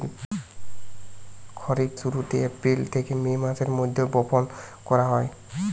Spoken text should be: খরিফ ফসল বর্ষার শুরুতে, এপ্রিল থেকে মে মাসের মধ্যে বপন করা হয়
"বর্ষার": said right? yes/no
no